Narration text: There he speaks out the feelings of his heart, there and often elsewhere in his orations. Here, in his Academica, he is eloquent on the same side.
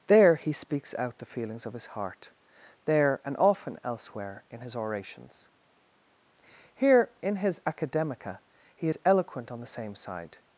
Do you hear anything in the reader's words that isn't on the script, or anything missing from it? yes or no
no